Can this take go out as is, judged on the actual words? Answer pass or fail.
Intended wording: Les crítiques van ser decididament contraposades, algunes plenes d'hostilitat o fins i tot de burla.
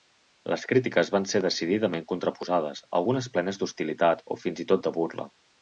pass